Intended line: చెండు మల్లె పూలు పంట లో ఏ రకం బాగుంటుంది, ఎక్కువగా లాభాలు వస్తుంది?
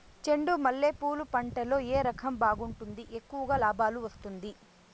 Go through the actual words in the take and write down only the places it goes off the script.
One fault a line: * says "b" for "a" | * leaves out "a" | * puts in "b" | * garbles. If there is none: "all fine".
all fine